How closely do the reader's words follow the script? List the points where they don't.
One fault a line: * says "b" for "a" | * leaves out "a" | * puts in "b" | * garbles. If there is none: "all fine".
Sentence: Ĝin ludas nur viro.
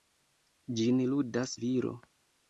* leaves out "nur"